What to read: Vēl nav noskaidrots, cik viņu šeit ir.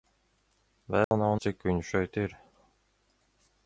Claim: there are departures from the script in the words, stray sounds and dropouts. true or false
true